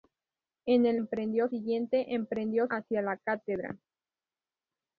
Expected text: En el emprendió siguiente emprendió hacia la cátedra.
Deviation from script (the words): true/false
false